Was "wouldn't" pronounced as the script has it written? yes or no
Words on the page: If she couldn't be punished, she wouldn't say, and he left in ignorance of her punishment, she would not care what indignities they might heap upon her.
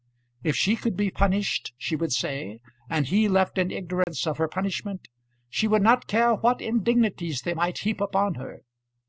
no